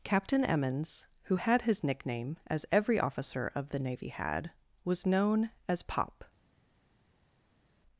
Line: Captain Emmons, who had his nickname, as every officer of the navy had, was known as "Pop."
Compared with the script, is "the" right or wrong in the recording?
right